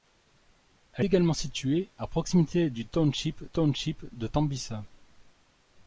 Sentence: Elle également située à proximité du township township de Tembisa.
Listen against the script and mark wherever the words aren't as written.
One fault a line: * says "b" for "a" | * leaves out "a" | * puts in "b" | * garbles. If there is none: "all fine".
all fine